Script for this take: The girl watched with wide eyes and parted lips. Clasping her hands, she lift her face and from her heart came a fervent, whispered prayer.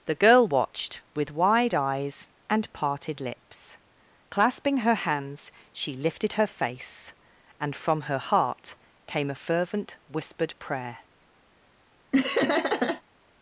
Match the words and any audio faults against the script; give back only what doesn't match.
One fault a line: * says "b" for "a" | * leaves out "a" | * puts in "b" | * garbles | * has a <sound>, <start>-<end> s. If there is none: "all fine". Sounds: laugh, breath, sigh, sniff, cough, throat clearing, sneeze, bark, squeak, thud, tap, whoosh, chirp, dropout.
* says "lifted" for "lift"
* has a laugh, 12.1-13.0 s